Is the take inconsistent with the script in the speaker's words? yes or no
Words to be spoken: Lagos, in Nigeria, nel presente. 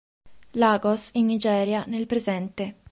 no